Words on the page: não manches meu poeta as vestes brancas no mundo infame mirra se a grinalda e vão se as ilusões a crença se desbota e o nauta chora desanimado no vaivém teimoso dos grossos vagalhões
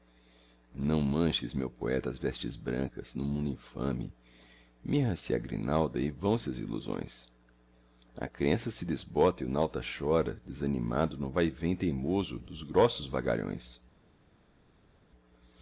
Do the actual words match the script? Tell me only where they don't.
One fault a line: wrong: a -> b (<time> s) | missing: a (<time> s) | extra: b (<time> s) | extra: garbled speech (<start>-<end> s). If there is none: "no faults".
no faults